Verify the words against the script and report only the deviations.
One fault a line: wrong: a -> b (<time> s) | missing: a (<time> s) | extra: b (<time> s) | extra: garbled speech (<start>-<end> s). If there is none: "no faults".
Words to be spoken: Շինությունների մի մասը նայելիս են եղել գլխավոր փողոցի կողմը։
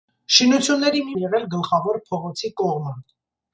missing: մասը նայելիս (1.2 s)